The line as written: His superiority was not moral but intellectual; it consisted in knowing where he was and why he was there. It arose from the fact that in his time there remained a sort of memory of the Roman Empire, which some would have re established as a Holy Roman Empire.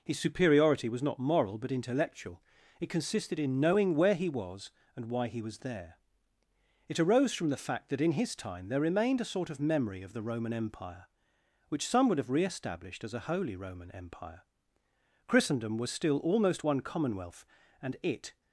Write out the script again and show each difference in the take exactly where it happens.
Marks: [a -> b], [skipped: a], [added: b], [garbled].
His superiority was not moral but intellectual; it consisted in knowing where he was and why he was there. It arose from the fact that in his time there remained a sort of memory of the Roman Empire, which some would have re established as a Holy Roman Empire. [added: Christendom was still almost one commonwealth and it]